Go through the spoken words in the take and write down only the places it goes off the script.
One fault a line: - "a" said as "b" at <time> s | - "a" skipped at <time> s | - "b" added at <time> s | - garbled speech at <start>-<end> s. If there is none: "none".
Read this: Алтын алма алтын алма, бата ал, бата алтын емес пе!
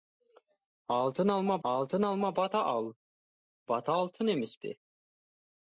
none